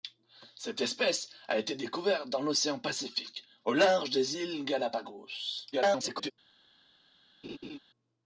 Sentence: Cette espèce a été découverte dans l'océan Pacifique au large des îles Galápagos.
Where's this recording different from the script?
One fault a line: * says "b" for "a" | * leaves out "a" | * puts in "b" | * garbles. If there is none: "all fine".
* garbles